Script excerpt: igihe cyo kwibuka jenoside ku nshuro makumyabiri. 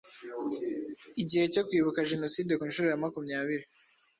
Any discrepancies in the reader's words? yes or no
yes